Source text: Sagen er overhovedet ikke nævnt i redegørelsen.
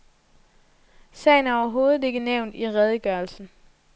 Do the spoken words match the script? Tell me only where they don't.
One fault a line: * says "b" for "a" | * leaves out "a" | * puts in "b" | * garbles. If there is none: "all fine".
all fine